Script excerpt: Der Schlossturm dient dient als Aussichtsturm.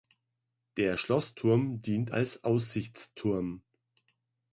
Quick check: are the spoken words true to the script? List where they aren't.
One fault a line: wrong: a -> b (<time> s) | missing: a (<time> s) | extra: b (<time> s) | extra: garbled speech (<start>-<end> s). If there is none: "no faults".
missing: dient (2.1 s)